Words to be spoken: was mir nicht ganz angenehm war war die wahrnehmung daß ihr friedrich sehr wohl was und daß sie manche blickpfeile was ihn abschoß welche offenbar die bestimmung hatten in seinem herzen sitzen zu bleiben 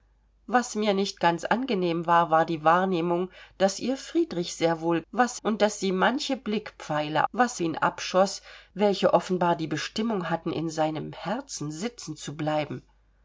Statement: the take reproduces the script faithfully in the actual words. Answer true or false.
true